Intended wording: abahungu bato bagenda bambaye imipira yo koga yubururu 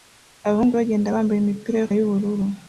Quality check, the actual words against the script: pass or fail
fail